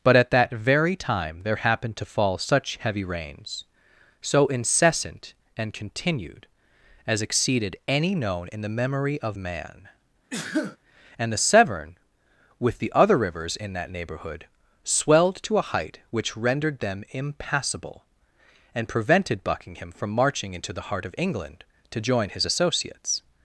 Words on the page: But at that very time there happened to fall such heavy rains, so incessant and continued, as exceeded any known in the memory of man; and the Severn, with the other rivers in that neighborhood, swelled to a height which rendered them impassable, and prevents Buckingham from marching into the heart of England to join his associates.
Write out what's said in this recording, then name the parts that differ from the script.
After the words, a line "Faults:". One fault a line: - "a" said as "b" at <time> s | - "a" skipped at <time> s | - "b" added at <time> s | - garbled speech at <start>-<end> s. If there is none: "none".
But at that very time there happened to fall such heavy rains, so incessant and continued, as exceeded any known in the memory of man; and the Severn, with the other rivers in that neighborhood, swelled to a height which rendered them impassable, and prevented Buckingham from marching into the heart of England to join his associates.
Faults:
- "prevents" said as "prevented" at 18.9 s